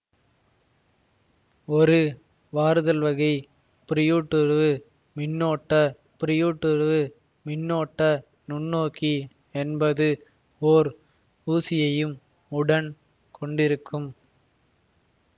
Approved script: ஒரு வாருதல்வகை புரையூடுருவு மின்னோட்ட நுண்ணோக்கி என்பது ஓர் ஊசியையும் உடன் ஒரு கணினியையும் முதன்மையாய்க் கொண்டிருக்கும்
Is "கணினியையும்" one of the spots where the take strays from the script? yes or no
yes